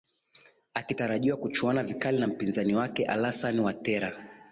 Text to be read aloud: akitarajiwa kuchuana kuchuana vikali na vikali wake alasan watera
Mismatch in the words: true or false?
true